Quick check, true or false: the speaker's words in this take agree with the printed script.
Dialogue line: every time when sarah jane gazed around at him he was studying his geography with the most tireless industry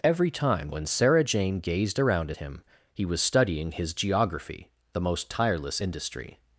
false